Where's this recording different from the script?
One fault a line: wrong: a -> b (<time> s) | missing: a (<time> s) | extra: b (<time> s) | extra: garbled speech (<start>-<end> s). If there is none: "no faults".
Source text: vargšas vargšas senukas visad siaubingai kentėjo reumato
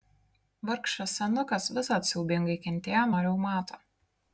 missing: vargšas (1.1 s)
extra: nuo (3.1 s)